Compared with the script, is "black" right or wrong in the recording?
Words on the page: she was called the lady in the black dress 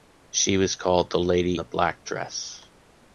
right